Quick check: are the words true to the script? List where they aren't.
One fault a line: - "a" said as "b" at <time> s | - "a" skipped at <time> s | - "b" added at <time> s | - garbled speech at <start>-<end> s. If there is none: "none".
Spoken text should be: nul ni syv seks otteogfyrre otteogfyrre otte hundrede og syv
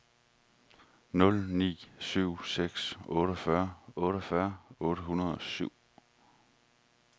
none